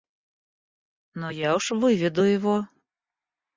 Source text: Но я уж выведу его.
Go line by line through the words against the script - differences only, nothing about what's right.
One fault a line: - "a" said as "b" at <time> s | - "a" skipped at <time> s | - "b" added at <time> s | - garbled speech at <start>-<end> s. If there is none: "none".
none